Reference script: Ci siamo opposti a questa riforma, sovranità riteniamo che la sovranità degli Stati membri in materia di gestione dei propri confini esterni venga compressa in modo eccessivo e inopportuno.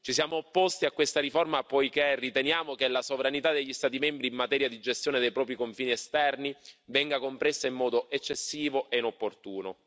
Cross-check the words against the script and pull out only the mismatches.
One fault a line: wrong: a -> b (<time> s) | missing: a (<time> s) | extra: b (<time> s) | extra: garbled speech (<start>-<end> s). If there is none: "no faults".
wrong: sovranità -> poiché (1.6 s)